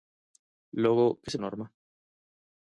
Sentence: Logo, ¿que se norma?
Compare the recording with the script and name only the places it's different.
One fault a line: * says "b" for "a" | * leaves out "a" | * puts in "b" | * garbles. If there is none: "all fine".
all fine